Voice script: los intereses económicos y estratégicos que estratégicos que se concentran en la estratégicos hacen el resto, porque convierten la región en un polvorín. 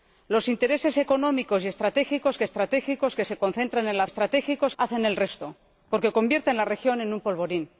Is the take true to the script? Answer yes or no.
yes